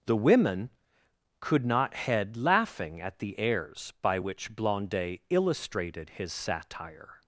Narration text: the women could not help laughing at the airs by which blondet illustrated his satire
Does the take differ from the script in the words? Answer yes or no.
yes